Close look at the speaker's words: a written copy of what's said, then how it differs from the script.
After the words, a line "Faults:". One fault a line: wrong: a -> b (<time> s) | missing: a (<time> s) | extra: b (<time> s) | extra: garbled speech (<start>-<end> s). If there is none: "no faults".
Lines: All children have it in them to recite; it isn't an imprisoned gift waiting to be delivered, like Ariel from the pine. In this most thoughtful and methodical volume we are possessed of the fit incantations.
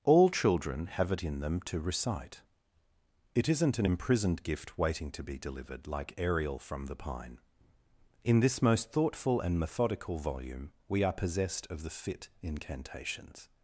All children have it in them to recite; it isn't an imprisoned gift waiting to be delivered, like Ariel from the pine. In this most thoughtful and methodical volume we are possessed of the fit incantations.
Faults:
no faults